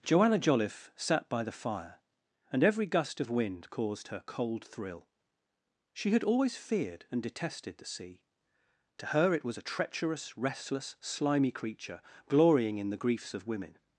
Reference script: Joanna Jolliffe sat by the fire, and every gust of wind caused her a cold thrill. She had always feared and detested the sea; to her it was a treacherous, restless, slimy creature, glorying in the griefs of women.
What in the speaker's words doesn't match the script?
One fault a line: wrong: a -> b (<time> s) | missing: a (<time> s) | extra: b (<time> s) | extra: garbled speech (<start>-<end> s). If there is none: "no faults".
missing: a (4.2 s)